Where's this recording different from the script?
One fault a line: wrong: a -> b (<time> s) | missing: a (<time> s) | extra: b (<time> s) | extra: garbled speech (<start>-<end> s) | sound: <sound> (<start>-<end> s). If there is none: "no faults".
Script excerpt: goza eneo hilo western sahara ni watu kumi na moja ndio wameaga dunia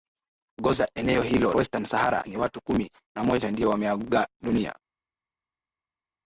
no faults